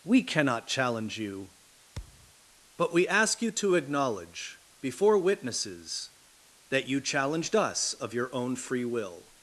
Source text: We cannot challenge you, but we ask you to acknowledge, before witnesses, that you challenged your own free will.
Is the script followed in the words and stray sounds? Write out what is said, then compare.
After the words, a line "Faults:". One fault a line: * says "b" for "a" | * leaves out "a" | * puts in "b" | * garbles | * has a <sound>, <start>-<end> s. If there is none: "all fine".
We cannot challenge you, but we ask you to acknowledge, before witnesses, that you challenged us of your own free will.
Faults:
* has a thud, 2.0-2.3 s
* puts in "us of"